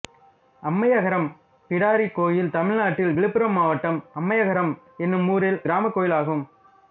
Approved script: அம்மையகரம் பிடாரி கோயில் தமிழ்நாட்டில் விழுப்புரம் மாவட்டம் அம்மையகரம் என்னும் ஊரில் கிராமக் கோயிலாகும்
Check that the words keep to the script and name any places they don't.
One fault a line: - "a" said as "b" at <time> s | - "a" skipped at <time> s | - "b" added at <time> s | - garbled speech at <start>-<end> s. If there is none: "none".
none